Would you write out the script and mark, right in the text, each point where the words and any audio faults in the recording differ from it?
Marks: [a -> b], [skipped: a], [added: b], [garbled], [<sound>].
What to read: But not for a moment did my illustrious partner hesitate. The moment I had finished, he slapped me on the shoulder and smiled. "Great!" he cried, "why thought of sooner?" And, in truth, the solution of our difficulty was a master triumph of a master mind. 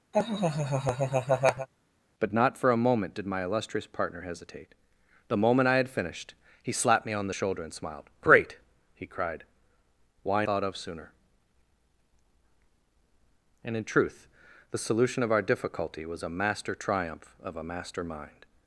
[laugh] But not for a moment did my illustrious partner hesitate. The moment I had finished, he slapped me on the shoulder and smiled. "Great!" he cried, "why thought of sooner?" And, in truth, the solution of our difficulty was a master triumph of a master mind.